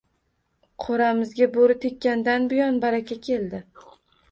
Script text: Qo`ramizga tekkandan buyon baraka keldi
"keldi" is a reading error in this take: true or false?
false